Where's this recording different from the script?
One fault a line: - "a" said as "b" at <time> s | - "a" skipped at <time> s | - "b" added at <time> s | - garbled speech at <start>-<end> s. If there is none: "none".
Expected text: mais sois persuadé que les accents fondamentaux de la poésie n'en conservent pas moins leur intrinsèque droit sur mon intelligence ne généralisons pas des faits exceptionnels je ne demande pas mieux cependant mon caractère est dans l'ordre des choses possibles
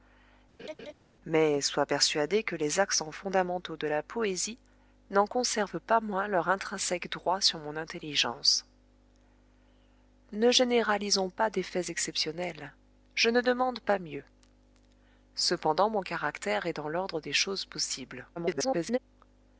- garbled speech at 18.4-19.0 s